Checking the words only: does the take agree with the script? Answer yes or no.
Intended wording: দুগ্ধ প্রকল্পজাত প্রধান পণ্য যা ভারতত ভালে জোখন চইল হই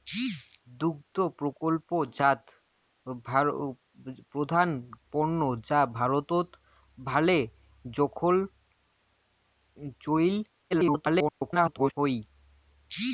no